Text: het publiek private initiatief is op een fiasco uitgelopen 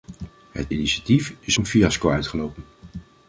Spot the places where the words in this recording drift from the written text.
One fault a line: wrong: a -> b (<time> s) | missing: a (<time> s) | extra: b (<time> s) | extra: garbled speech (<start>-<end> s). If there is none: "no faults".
missing: publiek private (0.7 s)
missing: op (1.6 s)